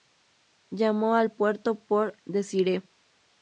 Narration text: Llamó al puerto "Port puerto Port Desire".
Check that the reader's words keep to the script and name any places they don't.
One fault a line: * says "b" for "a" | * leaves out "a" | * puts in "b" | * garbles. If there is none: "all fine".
* leaves out "puerto Port"